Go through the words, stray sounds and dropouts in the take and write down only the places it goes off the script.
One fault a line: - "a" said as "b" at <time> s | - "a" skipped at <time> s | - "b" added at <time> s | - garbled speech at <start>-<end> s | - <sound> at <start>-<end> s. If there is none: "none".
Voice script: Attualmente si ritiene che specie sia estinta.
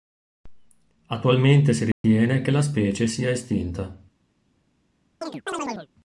- dropout at 1.9-2.0 s
- "la" added at 2.5 s
- chirp at 5.2-5.9 s